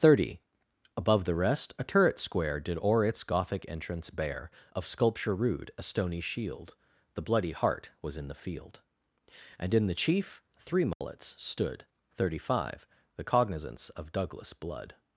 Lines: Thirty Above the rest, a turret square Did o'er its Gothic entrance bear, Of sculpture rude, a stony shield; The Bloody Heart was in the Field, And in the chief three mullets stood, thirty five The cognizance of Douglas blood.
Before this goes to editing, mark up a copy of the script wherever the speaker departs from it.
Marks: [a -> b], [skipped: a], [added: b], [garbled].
Thirty Above the rest, a turret square Did o'er its Gothic entrance bear, Of sculpture rude, a stony shield; The Bloody Heart was in the Field, And in the chief three mullets stood, thirty five The cognizance of Douglas blood.